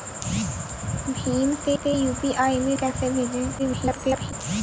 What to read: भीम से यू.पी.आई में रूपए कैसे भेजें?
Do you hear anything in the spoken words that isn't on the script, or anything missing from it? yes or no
yes